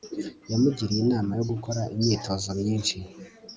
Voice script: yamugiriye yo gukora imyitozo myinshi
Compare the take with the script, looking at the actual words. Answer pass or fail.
fail